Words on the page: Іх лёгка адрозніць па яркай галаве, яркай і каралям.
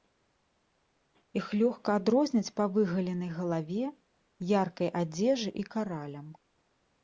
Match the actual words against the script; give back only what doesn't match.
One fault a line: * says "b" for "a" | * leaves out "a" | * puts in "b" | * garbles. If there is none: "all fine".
* says "выгаленай" for "яркай"
* puts in "адзежы"